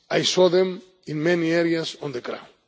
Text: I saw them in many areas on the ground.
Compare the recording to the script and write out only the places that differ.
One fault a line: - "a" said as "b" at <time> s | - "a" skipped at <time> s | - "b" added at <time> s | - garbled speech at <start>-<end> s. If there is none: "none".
none